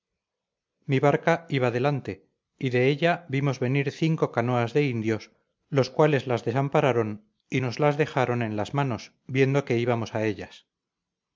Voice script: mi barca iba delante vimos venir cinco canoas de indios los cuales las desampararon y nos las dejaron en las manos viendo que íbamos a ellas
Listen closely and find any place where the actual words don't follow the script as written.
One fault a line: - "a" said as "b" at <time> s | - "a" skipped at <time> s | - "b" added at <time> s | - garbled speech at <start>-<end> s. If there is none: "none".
- "y de ella" added at 2.6 s